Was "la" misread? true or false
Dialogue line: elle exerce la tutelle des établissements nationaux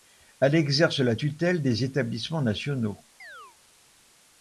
false